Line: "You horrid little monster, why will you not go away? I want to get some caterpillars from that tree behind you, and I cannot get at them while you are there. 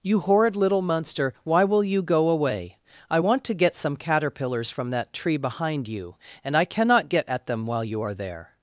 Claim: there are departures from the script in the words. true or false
true